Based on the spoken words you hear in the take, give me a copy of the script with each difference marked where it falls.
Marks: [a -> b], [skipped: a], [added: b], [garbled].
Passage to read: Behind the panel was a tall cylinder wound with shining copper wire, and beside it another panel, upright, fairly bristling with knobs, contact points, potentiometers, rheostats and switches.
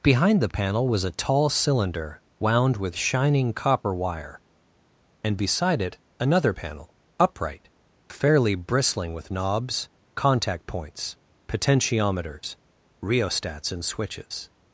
Behind the panel was a tall cylinder wound with shining copper wire, and beside it another panel, upright, fairly bristling with knobs, contact points, potentiometers, rheostats and switches.